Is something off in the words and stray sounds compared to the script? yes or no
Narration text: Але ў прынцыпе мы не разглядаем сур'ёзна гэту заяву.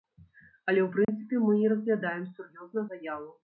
yes